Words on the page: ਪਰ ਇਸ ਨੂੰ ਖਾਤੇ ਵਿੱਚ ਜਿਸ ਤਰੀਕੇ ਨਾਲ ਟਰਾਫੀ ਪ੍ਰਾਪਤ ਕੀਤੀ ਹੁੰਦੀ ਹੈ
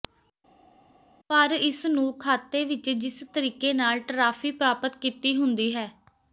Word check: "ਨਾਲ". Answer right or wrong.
right